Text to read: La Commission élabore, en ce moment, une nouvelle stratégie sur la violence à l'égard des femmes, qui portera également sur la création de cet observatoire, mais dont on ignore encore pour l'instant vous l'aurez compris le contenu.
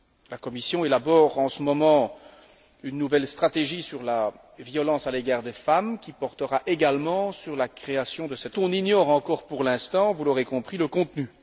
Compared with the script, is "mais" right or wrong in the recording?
wrong